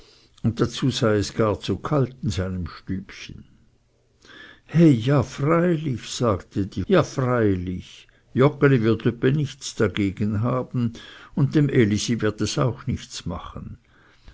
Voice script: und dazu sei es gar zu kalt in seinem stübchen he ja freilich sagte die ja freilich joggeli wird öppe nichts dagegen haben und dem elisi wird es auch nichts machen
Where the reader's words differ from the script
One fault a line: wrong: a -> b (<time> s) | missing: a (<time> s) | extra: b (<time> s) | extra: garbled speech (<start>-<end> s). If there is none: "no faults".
no faults